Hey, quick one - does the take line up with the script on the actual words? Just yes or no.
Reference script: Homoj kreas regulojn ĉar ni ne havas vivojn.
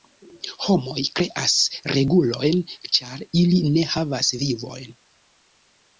no